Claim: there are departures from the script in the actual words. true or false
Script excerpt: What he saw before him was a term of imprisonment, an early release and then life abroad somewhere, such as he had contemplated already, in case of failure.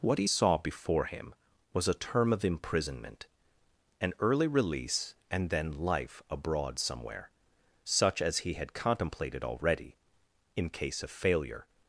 false